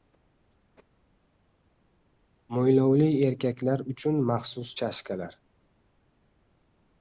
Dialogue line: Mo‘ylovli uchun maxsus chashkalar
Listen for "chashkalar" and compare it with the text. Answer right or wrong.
right